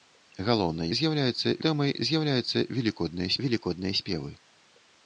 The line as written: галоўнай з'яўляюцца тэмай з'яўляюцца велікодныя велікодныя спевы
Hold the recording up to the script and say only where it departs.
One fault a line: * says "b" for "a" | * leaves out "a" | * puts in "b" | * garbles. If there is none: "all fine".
all fine